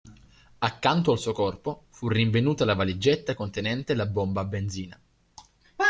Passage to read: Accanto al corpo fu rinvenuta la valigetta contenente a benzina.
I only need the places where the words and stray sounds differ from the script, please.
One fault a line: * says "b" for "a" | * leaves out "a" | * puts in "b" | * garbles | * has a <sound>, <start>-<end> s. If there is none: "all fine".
* puts in "suo"
* puts in "la bomba"